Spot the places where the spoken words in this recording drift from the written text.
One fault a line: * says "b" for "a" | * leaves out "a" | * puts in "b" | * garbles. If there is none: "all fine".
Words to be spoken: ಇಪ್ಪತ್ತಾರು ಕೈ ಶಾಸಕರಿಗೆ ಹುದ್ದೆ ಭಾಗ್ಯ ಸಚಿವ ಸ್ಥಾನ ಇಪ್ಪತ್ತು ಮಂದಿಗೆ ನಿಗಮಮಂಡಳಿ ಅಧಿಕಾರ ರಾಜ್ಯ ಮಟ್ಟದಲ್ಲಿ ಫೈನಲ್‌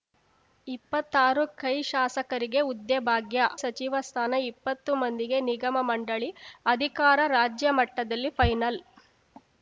all fine